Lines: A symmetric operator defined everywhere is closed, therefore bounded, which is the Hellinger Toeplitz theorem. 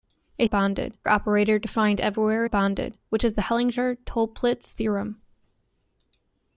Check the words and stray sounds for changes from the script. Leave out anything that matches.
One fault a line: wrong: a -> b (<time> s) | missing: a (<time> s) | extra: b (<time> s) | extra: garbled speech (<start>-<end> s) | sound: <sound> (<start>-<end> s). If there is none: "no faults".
wrong: symmetric -> bounded (0.4 s)
missing: is closed therefore (2.4 s)